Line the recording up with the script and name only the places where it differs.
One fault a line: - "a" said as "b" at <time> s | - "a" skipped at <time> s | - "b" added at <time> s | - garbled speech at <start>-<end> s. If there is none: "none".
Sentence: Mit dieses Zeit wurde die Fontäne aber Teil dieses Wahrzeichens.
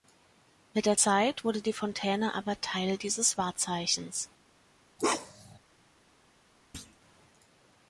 - "dieses" said as "der" at 0.9 s